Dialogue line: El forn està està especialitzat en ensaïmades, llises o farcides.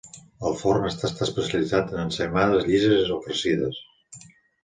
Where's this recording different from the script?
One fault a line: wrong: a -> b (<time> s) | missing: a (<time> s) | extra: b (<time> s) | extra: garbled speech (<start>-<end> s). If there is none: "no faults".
no faults